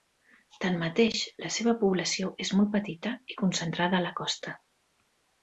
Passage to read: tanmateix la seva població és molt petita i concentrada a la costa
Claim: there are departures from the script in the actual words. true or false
false